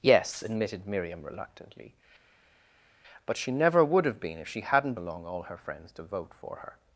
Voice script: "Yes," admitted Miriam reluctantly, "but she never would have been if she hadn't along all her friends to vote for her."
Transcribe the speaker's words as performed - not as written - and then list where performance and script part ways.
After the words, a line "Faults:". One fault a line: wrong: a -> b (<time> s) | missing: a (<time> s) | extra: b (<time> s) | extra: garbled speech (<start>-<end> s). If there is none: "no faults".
"Yes," admitted Miriam reluctantly, "but she never would have been if she hadn't along all her friends to vote for her."
Faults:
no faults